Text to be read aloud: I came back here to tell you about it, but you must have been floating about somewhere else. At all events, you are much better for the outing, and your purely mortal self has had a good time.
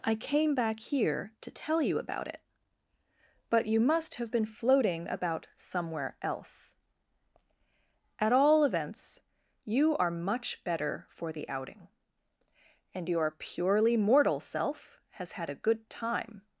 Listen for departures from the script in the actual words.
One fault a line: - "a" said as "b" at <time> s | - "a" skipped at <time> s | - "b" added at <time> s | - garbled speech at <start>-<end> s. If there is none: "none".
none